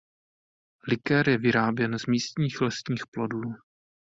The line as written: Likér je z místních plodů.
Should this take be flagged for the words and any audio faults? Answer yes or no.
yes